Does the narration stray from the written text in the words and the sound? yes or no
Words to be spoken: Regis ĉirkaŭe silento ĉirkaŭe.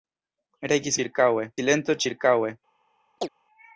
yes